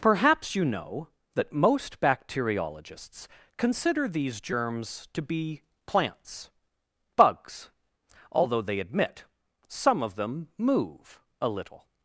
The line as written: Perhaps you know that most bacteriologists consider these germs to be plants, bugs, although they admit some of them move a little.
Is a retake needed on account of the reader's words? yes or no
no